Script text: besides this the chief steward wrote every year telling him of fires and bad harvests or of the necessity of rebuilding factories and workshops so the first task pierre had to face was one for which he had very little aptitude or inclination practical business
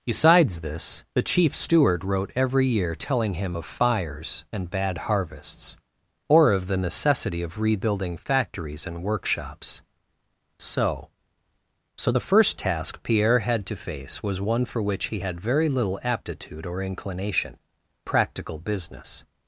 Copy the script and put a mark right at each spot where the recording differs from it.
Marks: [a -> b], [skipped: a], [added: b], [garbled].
besides this the chief steward wrote every year telling him of fires and bad harvests or of the necessity of rebuilding factories and workshops so [added: so] the first task pierre had to face was one for which he had very little aptitude or inclination practical business